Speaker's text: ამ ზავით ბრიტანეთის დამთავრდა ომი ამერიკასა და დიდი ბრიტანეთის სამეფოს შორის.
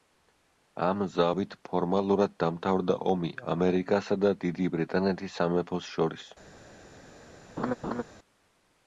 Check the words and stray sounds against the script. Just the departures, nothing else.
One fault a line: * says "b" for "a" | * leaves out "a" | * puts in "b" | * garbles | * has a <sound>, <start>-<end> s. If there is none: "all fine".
* says "ფორმალურად" for "ბრიტანეთის"
* has a laugh, 7.6-8.0 s